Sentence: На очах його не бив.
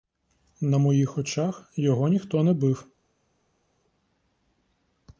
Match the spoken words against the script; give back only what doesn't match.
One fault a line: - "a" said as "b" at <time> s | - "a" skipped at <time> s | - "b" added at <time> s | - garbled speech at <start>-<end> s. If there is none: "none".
- "моїх" added at 0.8 s
- "ніхто" added at 2.1 s